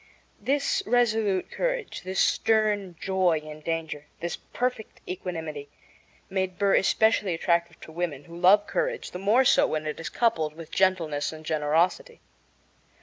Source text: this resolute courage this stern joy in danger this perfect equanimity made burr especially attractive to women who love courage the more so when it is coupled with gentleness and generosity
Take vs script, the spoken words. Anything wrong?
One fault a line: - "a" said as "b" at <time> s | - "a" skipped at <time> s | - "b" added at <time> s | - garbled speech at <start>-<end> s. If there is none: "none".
none